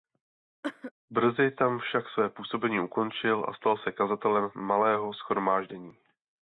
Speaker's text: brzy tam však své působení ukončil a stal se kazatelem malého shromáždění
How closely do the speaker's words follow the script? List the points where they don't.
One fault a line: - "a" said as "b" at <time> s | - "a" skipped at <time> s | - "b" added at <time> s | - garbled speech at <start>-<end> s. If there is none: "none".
none